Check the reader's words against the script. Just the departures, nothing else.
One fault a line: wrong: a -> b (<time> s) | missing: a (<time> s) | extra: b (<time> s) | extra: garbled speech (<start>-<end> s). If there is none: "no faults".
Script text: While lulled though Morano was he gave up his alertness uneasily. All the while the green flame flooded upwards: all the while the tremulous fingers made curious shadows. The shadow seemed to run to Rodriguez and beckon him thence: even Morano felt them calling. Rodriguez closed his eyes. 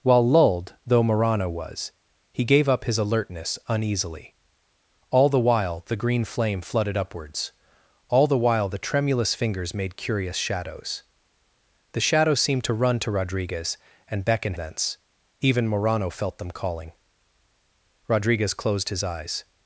missing: him (14.6 s)